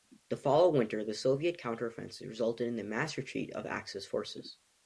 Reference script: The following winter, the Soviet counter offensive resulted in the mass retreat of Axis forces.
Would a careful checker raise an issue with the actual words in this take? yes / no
no